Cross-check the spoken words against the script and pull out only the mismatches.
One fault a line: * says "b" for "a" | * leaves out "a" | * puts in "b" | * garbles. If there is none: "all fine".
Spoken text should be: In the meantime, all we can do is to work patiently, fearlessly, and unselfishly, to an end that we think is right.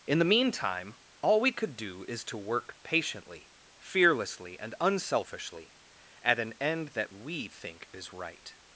* says "could" for "can"
* says "at" for "to"